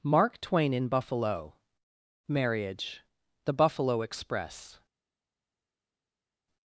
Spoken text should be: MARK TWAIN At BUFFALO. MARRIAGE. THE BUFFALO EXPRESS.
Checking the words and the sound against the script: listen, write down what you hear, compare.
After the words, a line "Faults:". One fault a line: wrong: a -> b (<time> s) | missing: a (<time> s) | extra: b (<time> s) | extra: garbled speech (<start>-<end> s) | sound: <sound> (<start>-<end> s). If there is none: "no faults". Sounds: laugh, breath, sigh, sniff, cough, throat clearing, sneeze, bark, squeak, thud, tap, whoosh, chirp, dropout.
MARK TWAIN IN BUFFALO. MARRIAGE. THE BUFFALO EXPRESS.
Faults:
wrong: At -> IN (0.7 s)